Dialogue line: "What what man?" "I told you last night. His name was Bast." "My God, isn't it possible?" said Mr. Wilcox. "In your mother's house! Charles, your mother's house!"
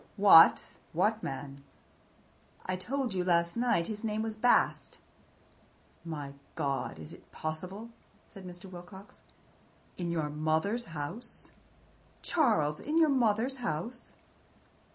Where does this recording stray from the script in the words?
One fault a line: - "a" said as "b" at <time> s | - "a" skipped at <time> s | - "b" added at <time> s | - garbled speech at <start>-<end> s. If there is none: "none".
- "isn't" said as "is" at 7.0 s
- "in" added at 12.8 s